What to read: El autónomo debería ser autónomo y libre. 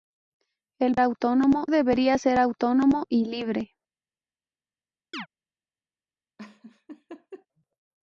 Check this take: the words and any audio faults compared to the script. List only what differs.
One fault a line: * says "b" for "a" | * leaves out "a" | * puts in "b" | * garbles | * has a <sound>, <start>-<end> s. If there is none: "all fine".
* has a chirp, 5.1-5.3 s
* has a laugh, 6.4-7.5 s